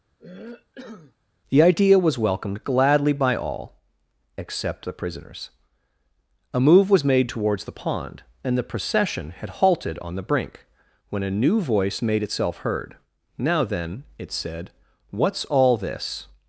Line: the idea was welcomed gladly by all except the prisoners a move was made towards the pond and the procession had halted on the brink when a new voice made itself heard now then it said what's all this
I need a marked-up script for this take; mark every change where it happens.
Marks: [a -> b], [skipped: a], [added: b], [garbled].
the idea was welcomed gladly by all except the prisoners a move was made towards the pond and the procession had halted on the brink when a new voice made itself heard now then it said what's all this